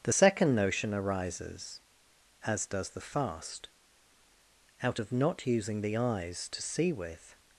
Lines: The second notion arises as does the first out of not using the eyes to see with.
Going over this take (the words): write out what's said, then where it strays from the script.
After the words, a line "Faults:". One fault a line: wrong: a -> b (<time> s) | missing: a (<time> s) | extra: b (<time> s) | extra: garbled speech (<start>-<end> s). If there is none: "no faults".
The second notion arises as does the fast out of not using the eyes to see with.
Faults:
wrong: first -> fast (3.0 s)